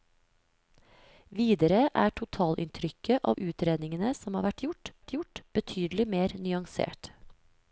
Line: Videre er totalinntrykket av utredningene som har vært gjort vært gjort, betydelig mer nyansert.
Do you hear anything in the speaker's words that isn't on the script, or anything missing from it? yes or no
no